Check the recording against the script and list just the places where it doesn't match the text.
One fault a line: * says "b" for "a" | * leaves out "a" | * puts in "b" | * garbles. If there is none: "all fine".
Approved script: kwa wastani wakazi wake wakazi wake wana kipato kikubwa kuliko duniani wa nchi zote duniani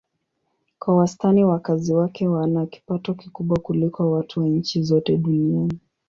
* leaves out "wakazi wake"
* says "watu" for "duniani"